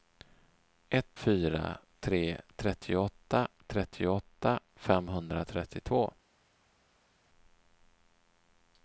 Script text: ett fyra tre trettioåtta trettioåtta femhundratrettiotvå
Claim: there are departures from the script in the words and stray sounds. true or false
false